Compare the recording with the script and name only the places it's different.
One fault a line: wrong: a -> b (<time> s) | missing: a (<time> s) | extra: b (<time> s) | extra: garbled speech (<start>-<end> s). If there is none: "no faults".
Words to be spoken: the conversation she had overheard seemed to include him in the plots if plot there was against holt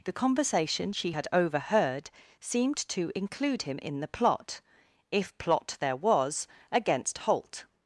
wrong: plots -> plot (4.1 s)